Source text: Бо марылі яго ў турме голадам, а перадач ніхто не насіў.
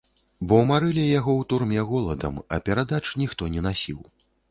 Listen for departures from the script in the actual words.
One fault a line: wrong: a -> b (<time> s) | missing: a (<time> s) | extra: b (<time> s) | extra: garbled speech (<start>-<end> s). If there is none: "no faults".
no faults